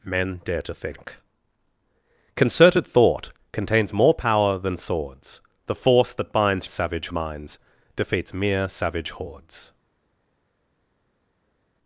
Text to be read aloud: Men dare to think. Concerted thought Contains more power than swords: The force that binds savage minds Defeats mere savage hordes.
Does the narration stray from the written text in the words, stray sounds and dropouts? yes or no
no